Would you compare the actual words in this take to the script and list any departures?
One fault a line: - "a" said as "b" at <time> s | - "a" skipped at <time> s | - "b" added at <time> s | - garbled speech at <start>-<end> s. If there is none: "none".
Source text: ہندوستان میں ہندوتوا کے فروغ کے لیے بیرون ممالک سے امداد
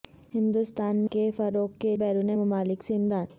- "میں ہندوتوا" skipped at 1.0 s
- "لیے" skipped at 2.0 s